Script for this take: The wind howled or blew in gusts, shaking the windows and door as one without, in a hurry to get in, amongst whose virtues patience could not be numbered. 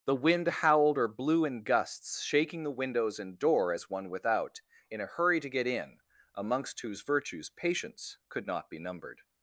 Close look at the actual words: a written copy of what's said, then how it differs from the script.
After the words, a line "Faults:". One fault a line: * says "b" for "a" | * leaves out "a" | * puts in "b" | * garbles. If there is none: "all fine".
The wind howled or blew in gusts, shaking the windows and door as one without, in a hurry to get in, amongst whose virtues patience could not be numbered.
Faults:
all fine